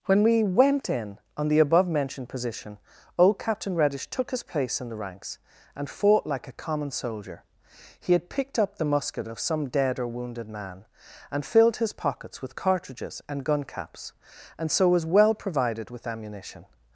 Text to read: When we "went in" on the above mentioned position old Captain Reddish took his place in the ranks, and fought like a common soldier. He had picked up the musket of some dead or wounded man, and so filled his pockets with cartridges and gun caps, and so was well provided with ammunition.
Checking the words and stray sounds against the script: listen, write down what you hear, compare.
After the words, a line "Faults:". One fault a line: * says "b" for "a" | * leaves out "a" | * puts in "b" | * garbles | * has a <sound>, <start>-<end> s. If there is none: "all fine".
When we "went in" on the above mentioned position old Captain Reddish took his place in the ranks, and fought like a common soldier. He had picked up the musket of some dead or wounded man, and filled his pockets with cartridges and gun caps, and so was well provided with ammunition.
Faults:
* leaves out "so"